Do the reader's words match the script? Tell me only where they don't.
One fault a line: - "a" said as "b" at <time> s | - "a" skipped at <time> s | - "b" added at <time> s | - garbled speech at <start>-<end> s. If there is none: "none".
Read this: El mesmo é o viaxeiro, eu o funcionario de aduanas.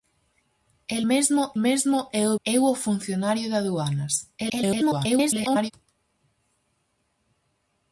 - "mesmo" added at 1.6 s
- "viaxeiro" skipped at 2.4 s
- garbled speech at 4.4-5.7 s